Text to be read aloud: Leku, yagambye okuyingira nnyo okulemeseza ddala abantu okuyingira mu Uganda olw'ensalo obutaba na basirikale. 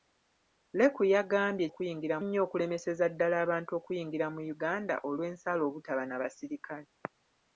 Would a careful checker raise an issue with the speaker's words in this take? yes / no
no